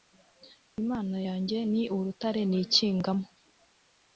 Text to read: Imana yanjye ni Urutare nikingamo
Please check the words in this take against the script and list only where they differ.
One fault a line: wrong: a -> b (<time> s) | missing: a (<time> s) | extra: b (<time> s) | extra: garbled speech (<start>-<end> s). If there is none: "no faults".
no faults